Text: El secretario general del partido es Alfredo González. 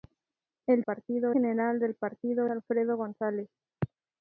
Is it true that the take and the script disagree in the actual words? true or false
true